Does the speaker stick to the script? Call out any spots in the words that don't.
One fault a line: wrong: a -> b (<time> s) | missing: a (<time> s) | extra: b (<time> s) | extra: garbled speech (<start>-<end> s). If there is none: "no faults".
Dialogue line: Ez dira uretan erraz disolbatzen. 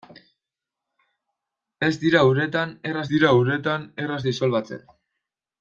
extra: dira uretan erraz (3.1 s)